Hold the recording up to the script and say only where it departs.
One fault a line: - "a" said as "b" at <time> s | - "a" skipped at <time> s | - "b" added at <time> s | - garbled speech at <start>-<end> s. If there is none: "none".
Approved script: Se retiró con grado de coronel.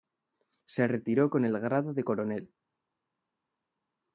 - "el" added at 1.4 s